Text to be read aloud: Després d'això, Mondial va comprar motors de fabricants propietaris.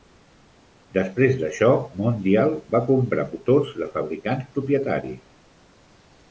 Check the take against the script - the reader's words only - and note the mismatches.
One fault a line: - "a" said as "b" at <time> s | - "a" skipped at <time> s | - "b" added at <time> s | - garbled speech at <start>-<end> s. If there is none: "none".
none